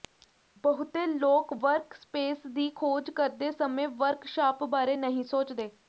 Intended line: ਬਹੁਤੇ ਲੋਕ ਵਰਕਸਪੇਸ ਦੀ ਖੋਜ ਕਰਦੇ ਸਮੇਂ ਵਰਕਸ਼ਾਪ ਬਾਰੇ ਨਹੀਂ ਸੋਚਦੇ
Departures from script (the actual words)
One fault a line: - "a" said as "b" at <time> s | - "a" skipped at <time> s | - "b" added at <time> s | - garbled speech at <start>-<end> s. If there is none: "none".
none